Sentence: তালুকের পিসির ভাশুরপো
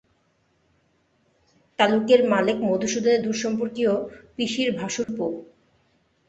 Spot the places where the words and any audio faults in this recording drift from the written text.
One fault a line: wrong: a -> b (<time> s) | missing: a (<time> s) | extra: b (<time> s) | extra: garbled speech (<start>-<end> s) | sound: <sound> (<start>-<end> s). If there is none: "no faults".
extra: মালেক মধুসূদনের দূরসম্পর্কীয় (2.3 s)
sound: dropout (5.0-5.1 s)